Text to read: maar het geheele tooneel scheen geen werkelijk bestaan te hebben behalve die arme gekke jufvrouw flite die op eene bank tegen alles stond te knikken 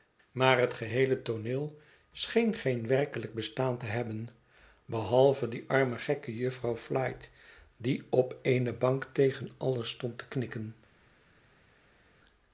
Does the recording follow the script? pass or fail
pass